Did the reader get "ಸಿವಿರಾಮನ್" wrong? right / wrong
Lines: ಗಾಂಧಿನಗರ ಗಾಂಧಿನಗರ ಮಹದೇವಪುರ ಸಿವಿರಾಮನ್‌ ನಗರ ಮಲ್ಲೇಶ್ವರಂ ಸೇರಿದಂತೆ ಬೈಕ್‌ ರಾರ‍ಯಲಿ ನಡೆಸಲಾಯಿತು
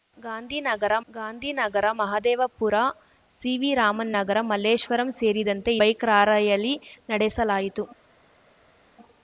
right